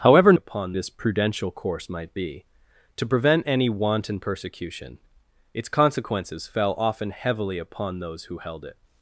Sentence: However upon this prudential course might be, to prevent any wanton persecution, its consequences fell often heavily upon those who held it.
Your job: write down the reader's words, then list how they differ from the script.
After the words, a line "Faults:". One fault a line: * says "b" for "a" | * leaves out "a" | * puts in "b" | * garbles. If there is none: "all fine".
However upon this prudential course might be, to prevent any wanton persecution, its consequences fell often heavily upon those who held it.
Faults:
all fine